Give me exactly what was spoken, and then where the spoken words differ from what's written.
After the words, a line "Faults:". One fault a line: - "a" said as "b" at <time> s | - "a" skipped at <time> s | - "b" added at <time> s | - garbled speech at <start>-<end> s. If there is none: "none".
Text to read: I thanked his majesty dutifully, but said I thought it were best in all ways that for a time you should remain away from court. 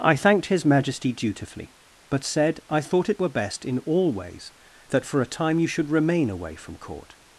I thanked his majesty dutifully, but said I thought it were best in all ways that for a time you should remain away from court.
Faults:
none